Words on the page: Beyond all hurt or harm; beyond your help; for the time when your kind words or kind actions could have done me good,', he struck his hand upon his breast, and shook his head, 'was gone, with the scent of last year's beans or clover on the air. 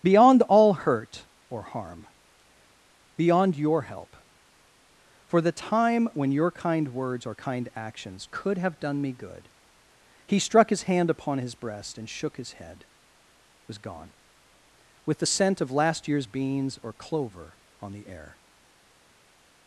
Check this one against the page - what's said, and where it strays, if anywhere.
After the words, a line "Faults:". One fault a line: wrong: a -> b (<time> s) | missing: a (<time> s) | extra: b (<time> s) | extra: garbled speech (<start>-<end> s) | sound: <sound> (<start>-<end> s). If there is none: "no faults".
Beyond all hurt or harm; beyond your help; for the time when your kind words or kind actions could have done me good,', he struck his hand upon his breast, and shook his head, 'was gone, with the scent of last year's beans or clover on the air.
Faults:
no faults